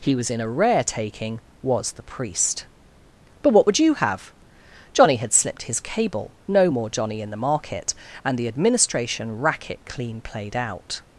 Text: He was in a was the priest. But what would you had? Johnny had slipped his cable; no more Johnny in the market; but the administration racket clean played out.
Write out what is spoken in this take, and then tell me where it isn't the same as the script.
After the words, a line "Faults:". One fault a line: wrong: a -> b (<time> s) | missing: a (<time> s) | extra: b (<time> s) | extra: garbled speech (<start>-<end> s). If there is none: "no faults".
He was in a rare taking, was the priest. But what would you have? Johnny had slipped his cable; no more Johnny in the market; and the administration racket clean played out.
Faults:
extra: rare taking (0.5 s)
wrong: had -> have (4.0 s)
wrong: but -> and (8.2 s)